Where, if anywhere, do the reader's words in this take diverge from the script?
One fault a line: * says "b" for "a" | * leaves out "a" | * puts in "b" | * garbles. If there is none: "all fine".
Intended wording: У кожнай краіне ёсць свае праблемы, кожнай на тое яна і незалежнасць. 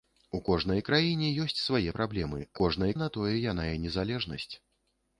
all fine